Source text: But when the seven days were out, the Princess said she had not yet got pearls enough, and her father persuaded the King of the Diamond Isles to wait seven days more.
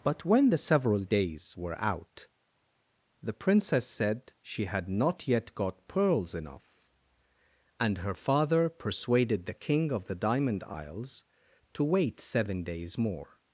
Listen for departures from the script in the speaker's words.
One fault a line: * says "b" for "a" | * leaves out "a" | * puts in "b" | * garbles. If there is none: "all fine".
* says "several" for "seven"